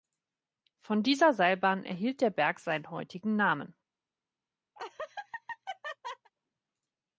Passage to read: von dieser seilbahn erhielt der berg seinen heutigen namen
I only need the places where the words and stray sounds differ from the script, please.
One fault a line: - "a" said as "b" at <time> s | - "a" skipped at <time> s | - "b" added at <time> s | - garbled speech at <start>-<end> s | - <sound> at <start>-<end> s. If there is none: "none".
- laugh at 4.8-6.3 s